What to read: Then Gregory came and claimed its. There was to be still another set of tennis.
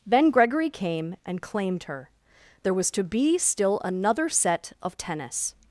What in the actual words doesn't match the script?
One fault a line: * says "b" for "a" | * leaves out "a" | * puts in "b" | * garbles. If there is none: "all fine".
* says "her" for "its"